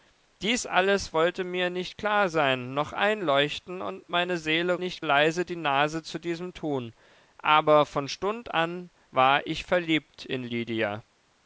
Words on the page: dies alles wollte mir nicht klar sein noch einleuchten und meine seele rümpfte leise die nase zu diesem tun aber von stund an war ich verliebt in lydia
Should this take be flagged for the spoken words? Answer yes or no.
yes